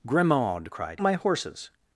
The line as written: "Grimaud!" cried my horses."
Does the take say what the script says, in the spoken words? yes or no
yes